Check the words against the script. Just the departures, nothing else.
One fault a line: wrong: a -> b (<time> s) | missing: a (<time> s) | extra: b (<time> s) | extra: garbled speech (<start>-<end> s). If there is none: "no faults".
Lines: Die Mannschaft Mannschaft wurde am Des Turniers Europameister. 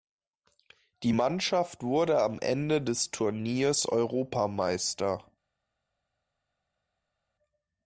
missing: Mannschaft (1.8 s)
extra: Ende (2.4 s)